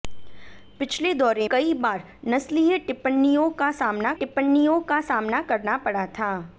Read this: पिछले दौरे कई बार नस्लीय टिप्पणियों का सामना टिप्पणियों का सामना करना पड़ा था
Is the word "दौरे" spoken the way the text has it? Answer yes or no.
yes